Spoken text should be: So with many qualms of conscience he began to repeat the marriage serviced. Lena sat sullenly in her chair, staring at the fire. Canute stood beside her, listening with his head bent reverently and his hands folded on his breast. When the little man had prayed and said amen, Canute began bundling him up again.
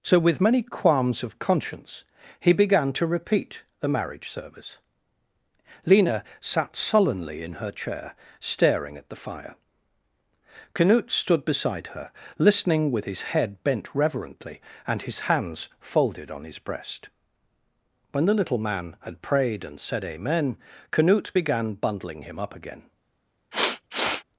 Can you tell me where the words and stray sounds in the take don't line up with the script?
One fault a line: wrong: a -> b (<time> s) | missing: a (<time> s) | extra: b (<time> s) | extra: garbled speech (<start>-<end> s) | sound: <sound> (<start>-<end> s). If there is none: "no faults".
wrong: serviced -> service (4.3 s)
sound: sniff (23.5-24.2 s)